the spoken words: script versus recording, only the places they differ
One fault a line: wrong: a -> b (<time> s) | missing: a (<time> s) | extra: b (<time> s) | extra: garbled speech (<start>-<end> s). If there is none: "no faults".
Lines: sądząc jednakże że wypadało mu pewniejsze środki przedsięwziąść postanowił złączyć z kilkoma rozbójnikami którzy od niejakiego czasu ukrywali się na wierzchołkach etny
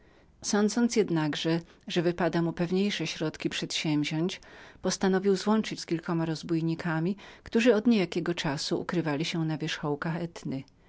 no faults